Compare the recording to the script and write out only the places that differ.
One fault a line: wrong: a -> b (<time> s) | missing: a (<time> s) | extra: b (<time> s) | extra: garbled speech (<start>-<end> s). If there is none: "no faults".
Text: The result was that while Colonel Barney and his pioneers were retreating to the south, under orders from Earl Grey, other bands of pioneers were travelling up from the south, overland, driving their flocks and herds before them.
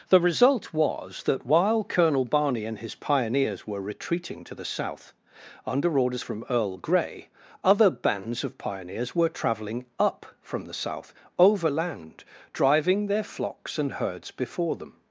no faults